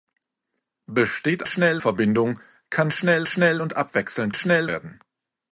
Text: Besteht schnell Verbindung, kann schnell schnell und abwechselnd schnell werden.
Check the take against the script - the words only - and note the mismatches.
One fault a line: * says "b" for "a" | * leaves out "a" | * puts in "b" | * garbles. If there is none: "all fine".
all fine